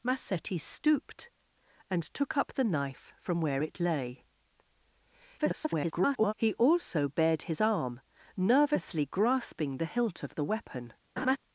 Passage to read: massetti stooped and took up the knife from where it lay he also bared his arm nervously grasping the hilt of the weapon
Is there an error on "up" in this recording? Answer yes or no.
no